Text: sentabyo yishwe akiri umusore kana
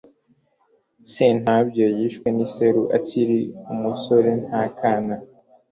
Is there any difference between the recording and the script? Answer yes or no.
yes